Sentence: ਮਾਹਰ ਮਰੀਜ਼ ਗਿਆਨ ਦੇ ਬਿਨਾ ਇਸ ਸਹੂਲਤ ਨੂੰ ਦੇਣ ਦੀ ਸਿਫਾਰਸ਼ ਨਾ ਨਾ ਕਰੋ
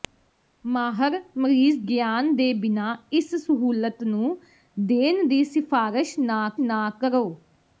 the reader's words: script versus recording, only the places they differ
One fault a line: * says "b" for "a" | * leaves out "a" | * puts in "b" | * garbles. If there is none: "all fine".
all fine